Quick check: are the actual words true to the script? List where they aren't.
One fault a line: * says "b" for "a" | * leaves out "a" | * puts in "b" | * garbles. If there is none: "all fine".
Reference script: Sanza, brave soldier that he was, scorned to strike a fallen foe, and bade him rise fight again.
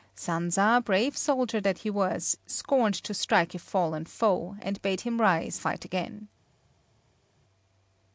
all fine